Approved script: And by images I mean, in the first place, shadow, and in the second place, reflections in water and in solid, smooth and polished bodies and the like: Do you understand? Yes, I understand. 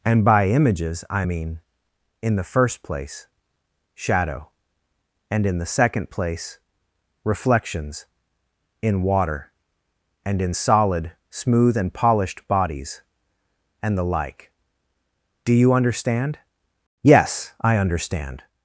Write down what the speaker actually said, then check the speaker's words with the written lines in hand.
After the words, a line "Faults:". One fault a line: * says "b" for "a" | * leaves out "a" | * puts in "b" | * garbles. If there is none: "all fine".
And by images I mean, in the first place, shadow, and in the second place, reflections in water and in solid, smooth and polished bodies and the like: Do you understand? Yes, I understand.
Faults:
all fine